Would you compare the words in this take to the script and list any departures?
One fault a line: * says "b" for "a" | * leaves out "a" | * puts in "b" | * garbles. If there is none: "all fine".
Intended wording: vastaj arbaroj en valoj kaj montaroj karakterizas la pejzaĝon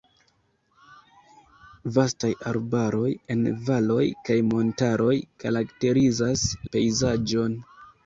* leaves out "la"